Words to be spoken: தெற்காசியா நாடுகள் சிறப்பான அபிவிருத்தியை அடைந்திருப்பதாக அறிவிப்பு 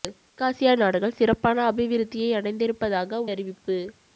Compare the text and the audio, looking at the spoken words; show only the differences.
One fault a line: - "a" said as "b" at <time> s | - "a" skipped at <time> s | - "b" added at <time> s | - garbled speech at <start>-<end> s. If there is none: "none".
none